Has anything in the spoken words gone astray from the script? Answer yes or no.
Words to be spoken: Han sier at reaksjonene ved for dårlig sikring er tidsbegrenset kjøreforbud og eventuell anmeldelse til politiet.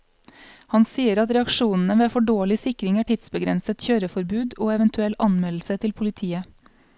no